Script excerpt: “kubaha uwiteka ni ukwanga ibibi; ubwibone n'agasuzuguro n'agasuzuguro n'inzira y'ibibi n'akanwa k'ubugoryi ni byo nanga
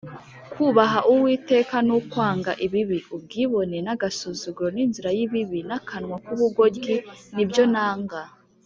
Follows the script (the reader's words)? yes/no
no